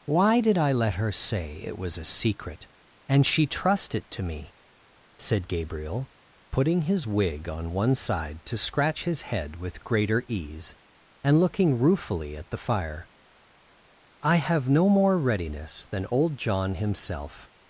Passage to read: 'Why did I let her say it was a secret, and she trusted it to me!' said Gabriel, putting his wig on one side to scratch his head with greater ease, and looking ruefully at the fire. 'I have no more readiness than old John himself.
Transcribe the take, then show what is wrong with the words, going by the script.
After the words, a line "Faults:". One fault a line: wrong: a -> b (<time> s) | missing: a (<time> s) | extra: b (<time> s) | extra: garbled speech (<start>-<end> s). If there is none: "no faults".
'Why did I let her say it was a secret, and she trust it to me!' said Gabriel, putting his wig on one side to scratch his head with greater ease, and looking ruefully at the fire. 'I have no more readiness than old John himself.
Faults:
wrong: trusted -> trust (3.4 s)